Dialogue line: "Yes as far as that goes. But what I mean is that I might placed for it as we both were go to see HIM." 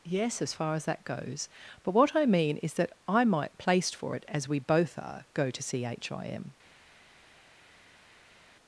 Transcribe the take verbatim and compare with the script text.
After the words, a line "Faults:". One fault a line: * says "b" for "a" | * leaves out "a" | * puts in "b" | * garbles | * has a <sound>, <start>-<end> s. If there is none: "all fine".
"Yes as far as that goes. But what I mean is that I might placed for it as we both are go to see HIM."
Faults:
* says "are" for "were"